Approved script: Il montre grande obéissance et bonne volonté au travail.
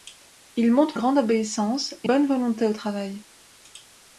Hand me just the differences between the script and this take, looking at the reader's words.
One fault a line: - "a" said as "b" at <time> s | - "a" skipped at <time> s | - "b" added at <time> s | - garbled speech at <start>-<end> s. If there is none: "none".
none